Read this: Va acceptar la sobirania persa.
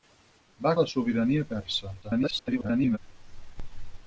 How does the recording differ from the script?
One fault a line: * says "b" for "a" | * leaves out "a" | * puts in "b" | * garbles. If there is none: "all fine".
* leaves out "acceptar"
* garbles